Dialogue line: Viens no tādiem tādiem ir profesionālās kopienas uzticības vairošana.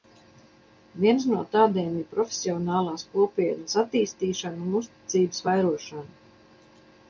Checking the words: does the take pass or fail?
fail